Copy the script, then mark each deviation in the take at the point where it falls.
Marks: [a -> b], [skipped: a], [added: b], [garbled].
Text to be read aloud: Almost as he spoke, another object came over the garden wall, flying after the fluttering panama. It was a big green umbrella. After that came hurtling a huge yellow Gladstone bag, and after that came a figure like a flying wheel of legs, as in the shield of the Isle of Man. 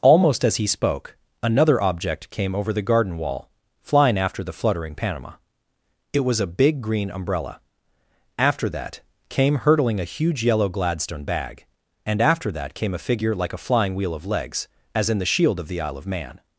Almost as he spoke, another object came over the garden wall, flying after the fluttering panama. It was a big green umbrella. After that came hurtling a huge yellow Gladstone bag, and after that came a figure like a flying wheel of legs, as in the shield of the Isle of Man.